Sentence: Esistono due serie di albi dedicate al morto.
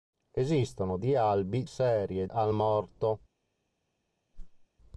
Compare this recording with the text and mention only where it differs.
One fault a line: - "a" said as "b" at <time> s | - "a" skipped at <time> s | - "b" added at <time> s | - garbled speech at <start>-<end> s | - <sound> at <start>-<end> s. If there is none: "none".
- "due serie" skipped at 1.0 s
- "dedicate" said as "serie" at 1.6 s
- whoosh at 4.3-4.7 s